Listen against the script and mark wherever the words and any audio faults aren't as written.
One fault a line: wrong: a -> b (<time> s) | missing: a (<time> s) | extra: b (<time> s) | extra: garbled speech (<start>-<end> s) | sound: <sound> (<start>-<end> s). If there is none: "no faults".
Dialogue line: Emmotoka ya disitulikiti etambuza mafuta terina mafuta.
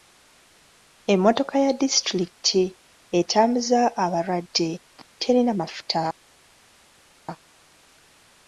wrong: mafuta -> abalwadde (4.0 s)